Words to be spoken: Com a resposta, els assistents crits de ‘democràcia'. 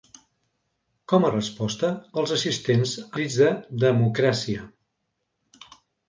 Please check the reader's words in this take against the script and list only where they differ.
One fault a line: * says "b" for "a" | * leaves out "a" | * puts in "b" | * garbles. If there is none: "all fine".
all fine